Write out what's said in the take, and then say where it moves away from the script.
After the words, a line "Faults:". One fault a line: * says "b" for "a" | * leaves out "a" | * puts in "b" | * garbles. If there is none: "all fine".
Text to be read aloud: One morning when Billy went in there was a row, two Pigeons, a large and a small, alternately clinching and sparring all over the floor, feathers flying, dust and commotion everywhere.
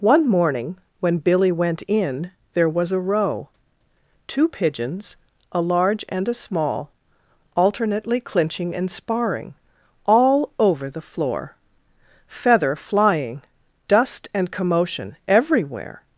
One morning when Billy went in there was a row, two Pigeons, a large and a small, alternately clinching and sparring all over the floor, feather flying, dust and commotion everywhere.
Faults:
* says "feather" for "feathers"